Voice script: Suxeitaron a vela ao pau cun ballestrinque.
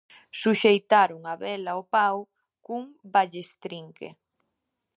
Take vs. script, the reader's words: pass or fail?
pass